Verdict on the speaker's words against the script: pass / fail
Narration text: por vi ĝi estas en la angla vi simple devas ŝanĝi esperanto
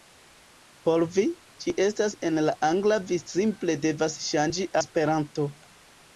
pass